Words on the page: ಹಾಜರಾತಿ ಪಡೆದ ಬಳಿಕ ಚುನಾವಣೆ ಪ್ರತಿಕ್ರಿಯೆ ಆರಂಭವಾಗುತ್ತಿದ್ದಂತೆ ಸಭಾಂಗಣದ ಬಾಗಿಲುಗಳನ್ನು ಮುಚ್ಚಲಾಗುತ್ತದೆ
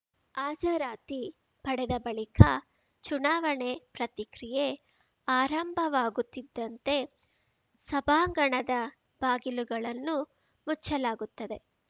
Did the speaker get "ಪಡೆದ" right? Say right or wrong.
right